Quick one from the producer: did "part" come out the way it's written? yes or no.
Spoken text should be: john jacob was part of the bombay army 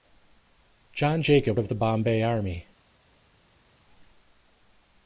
no